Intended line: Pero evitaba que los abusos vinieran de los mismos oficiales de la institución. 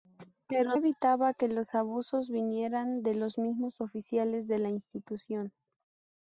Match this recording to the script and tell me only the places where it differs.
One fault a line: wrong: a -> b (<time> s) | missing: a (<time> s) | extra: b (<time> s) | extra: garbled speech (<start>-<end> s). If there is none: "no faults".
no faults